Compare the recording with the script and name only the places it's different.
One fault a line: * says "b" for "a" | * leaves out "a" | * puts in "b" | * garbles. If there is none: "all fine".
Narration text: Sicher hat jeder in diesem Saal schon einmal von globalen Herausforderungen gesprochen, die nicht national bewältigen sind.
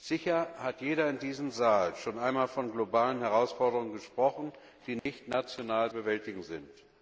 all fine